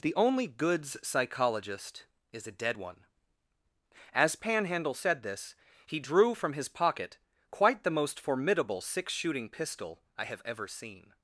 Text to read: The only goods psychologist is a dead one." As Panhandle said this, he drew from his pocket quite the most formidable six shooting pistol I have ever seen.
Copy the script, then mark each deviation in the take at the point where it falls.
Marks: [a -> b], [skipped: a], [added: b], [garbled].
The only goods psychologist is a dead one." As Panhandle said this, he drew from his pocket quite the most formidable six shooting pistol I have ever seen.